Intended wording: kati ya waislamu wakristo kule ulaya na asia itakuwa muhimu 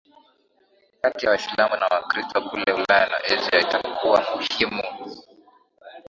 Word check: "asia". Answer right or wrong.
right